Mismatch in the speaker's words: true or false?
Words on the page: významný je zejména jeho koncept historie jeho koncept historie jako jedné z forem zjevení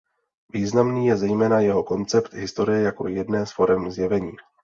true